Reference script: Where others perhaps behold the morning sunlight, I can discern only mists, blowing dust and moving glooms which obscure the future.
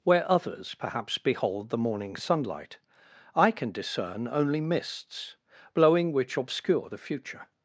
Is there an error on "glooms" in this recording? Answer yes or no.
yes